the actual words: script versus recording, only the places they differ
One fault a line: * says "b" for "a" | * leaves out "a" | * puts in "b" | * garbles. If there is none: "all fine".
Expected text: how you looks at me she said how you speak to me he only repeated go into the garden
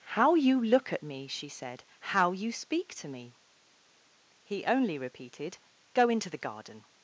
* says "look" for "looks"